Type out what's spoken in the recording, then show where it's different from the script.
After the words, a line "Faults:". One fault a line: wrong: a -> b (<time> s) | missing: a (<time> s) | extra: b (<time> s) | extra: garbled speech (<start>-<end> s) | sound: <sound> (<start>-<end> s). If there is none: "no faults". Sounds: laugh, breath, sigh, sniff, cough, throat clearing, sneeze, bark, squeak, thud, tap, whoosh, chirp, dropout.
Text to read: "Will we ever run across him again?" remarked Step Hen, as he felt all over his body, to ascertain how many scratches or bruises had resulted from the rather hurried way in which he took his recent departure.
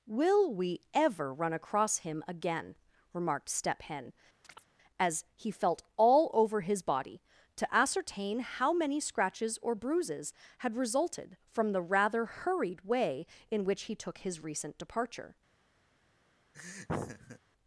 "Will we ever run across him again?" remarked Step Hen, as he felt all over his body, to ascertain how many scratches or bruises had resulted from the rather hurried way in which he took his recent departure.
Faults:
sound: chirp (4.4-4.7 s)
sound: laugh (16.5-17.4 s)